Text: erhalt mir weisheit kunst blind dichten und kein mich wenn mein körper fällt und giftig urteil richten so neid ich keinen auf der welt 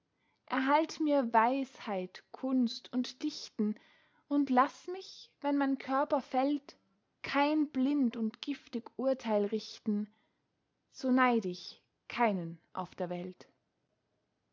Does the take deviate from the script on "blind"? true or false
true